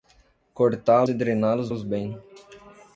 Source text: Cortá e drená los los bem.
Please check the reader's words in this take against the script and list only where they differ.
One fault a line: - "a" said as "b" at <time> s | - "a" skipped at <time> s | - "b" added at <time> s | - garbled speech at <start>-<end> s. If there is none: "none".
none